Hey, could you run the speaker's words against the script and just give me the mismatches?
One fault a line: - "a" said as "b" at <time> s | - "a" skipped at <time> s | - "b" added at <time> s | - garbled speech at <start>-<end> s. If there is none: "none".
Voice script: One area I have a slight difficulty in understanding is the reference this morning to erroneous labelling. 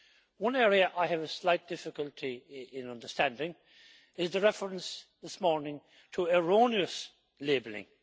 none